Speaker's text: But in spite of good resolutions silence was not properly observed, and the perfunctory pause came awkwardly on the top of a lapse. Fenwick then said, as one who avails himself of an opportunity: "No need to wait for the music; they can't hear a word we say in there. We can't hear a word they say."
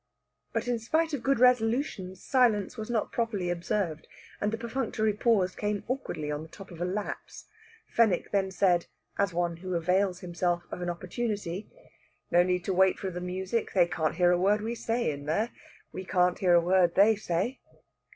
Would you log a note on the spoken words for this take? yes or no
no